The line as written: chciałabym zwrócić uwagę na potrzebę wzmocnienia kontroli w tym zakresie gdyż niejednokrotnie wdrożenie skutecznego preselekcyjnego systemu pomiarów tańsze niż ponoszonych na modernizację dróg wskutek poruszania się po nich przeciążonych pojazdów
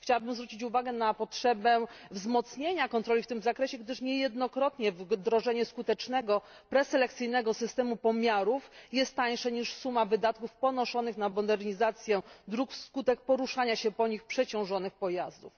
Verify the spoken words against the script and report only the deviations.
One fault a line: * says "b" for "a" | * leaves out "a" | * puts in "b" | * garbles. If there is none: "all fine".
* puts in "jest"
* puts in "suma wydatków"